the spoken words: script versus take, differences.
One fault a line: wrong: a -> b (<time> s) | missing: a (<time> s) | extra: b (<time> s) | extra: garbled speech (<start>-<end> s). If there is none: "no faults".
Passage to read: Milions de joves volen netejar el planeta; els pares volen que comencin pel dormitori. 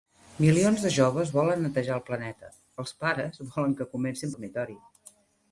missing: pel (4.3 s)